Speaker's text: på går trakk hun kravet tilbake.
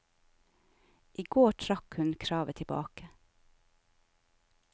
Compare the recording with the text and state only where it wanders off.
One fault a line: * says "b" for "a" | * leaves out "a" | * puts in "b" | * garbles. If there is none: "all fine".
* says "I" for "på"